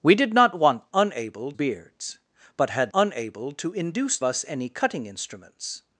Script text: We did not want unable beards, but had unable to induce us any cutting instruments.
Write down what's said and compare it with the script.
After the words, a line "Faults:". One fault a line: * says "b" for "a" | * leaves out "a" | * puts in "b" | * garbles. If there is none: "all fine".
We did not want unable beards, but had unable to induce us any cutting instruments.
Faults:
all fine